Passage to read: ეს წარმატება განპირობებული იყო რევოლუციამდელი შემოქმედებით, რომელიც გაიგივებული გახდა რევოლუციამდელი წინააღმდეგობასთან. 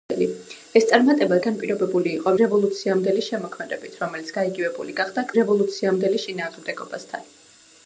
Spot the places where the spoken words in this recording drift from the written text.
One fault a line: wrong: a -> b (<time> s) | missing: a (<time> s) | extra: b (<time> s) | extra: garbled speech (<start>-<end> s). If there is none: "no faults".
no faults